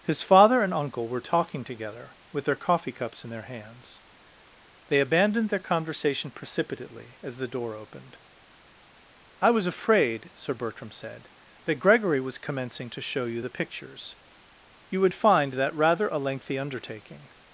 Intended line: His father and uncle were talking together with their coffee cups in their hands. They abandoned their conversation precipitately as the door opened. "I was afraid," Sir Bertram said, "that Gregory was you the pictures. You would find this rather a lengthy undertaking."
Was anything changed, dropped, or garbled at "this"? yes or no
yes